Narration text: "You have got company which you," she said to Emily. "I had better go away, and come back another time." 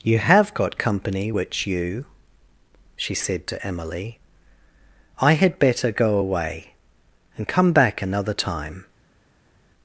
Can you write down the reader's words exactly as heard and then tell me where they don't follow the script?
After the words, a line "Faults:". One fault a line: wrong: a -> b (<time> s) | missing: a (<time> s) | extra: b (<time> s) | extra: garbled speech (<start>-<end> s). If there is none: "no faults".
"You have got company which you," she said to Emily. "I had better go away, and come back another time."
Faults:
no faults